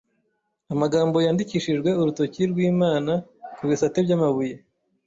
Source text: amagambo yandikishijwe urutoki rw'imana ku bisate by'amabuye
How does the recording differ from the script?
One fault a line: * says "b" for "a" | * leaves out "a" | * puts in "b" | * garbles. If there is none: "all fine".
all fine